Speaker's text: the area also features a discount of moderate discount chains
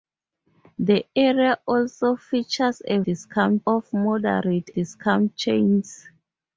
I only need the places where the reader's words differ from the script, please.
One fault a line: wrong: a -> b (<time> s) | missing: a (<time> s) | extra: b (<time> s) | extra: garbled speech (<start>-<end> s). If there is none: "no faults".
no faults